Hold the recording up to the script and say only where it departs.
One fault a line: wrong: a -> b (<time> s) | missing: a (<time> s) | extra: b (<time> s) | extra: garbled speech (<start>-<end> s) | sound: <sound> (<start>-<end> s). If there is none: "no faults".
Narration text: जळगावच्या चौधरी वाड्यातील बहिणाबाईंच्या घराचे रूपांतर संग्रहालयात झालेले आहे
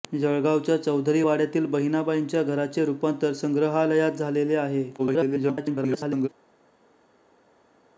extra: garbled speech (5.0-6.3 s)